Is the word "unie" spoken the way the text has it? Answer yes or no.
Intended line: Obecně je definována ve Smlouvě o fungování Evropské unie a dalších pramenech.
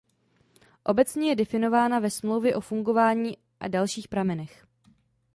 no